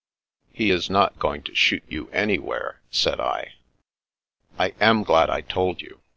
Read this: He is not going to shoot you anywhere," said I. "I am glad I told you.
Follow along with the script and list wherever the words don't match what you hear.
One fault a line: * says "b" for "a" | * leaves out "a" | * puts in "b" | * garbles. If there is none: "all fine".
all fine